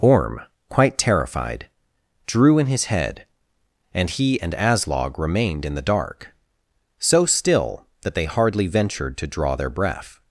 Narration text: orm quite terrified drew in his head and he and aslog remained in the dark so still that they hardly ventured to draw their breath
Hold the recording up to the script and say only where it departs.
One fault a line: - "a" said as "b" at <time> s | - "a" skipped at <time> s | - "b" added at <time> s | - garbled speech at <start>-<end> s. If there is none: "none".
none